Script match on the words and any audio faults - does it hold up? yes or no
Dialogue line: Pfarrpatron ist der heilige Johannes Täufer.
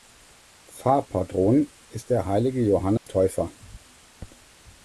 no